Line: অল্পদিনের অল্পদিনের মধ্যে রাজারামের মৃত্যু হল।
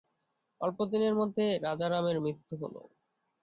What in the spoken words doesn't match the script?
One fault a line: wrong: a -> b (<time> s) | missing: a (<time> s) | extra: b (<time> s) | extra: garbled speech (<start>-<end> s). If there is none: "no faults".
missing: অল্পদিনের (1.1 s)